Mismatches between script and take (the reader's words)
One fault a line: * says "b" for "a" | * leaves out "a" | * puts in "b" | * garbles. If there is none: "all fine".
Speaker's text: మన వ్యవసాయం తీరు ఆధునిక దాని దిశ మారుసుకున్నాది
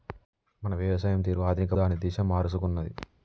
all fine